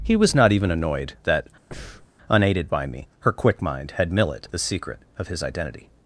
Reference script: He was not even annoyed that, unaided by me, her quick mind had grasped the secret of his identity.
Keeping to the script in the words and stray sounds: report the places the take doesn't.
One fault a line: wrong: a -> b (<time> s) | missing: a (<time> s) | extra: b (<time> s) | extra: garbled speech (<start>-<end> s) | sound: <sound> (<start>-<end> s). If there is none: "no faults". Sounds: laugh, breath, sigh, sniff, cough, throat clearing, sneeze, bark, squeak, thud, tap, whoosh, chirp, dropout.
sound: breath (1.7-2.1 s)
wrong: grasped -> millet (4.1 s)